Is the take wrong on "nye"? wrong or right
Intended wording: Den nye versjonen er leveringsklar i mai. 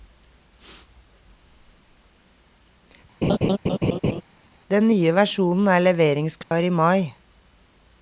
right